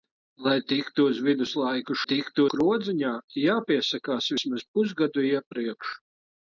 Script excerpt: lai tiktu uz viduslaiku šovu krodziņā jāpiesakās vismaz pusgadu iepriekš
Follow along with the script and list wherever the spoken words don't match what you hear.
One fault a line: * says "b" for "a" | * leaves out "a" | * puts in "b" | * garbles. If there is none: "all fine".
* says "tiktu" for "šovu"